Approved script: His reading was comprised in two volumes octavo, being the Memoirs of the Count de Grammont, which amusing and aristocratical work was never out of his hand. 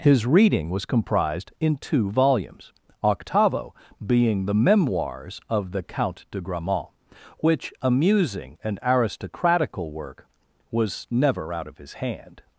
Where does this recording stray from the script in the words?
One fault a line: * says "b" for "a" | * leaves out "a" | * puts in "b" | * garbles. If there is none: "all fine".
all fine